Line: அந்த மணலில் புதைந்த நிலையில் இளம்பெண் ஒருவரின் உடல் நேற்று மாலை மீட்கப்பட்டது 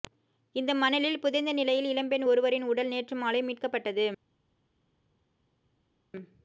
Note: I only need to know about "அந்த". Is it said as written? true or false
false